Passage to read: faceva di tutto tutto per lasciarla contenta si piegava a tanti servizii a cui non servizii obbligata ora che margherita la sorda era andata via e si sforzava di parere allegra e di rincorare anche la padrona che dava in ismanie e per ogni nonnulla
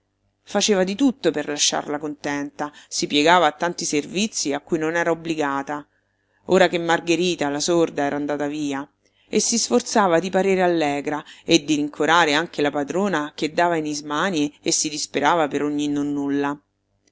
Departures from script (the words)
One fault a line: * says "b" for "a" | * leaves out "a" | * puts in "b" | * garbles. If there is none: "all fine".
* leaves out "tutto"
* says "era" for "servizii"
* puts in "si disperava"